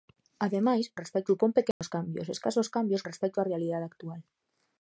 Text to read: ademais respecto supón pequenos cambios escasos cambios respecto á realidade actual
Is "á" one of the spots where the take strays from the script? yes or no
no